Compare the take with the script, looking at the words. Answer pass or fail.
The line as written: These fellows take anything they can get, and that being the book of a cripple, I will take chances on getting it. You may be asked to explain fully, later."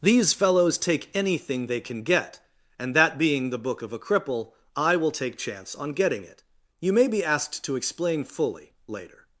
fail